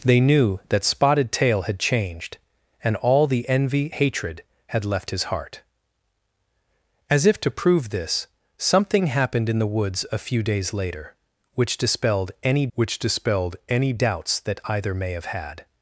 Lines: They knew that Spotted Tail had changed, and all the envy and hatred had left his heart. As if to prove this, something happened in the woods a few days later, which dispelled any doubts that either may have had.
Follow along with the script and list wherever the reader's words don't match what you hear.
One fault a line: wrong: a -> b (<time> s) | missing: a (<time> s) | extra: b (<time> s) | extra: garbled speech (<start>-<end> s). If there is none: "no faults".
missing: and (3.9 s)
extra: which dispelled any (12.7 s)